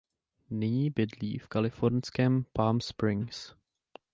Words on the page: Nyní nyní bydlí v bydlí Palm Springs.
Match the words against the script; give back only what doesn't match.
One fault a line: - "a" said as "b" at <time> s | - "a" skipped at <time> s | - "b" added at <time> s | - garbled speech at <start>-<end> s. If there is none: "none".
- "nyní" skipped at 0.9 s
- "bydlí" said as "kalifornském" at 1.4 s